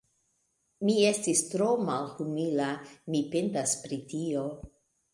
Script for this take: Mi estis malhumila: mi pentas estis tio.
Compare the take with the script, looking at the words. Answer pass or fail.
fail